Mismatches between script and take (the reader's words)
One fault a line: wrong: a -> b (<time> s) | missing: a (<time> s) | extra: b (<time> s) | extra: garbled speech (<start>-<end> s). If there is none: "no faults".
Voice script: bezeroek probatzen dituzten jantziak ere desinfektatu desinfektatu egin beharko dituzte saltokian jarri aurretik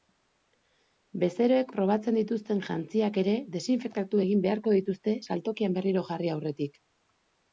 missing: desinfektatu (4.2 s)
extra: berriro (5.8 s)